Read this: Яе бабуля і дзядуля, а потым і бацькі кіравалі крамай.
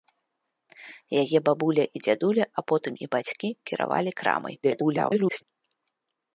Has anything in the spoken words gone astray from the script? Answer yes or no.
yes